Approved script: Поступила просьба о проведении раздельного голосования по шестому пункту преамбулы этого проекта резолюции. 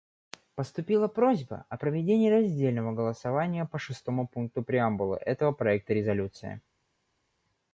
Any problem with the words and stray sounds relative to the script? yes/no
no